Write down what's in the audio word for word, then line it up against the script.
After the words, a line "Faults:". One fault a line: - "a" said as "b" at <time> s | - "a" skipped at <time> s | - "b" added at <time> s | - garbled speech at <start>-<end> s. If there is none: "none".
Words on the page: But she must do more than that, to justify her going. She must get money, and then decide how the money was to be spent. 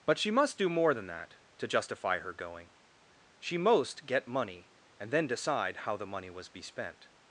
But she must do more than that, to justify her going. She most get money, and then decide how the money was be spent.
Faults:
- "must" said as "most" at 3.6 s
- "to" skipped at 6.5 s